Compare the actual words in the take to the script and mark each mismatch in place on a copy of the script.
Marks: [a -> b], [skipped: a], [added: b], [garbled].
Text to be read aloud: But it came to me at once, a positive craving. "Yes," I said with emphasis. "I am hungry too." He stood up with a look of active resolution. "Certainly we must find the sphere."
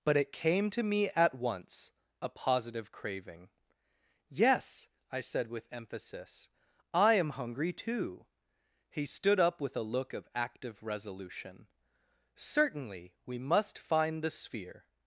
But it came to me at once, a positive craving. "Yes," I said with emphasis. "I am hungry too." He stood up with a look of active resolution. "Certainly we must find the sphere."